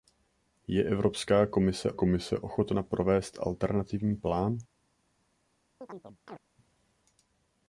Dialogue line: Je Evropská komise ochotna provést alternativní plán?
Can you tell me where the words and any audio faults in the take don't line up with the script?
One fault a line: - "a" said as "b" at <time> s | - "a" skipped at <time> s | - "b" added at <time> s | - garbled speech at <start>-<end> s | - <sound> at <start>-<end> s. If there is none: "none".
- "komise" added at 1.9 s
- chirp at 5.8-6.4 s